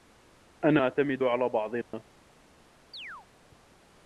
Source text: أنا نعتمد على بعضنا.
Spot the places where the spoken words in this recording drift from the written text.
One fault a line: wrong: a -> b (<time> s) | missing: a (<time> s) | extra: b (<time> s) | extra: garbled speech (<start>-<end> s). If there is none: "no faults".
no faults